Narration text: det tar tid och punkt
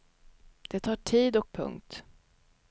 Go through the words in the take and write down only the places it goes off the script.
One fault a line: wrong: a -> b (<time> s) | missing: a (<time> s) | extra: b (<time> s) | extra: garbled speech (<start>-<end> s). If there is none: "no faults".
no faults